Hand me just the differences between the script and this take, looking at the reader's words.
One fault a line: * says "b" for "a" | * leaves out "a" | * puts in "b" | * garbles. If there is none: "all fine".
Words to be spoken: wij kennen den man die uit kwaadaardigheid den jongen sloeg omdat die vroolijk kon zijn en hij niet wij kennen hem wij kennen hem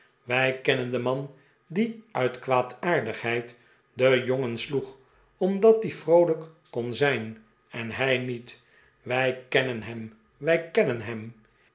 all fine